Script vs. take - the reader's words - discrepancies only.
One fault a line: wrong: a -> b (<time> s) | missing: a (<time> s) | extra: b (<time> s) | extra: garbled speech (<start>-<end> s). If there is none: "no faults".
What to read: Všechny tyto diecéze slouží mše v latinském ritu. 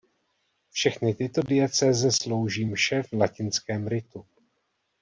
no faults